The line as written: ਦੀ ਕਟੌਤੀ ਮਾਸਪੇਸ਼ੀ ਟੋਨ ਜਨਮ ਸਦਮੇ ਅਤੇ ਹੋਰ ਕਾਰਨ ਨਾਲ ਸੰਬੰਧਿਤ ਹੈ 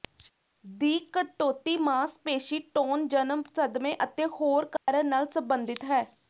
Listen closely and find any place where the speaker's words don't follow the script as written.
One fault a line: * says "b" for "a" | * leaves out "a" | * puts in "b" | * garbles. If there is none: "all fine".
all fine